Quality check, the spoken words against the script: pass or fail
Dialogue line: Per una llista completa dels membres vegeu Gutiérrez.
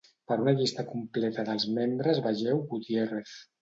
pass